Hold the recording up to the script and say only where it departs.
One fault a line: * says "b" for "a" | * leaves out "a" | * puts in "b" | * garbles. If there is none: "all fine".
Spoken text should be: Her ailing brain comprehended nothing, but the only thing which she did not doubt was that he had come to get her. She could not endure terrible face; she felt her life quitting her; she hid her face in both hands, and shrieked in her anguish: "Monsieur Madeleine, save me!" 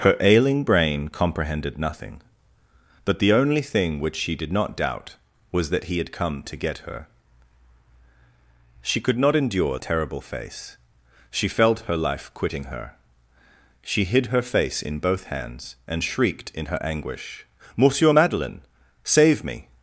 all fine